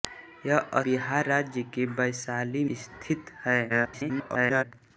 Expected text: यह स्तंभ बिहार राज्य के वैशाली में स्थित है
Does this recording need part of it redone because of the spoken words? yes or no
yes